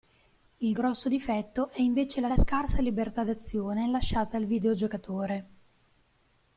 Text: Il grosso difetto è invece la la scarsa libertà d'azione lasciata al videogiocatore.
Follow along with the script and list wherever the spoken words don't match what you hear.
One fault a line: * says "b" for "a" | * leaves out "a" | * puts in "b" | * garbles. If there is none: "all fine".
all fine